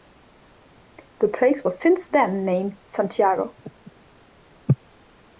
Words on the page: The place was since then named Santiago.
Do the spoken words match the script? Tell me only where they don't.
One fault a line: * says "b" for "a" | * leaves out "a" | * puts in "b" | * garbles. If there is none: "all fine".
all fine